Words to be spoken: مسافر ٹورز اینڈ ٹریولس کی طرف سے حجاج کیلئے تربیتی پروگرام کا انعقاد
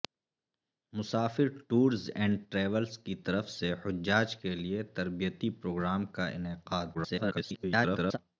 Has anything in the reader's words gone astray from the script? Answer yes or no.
yes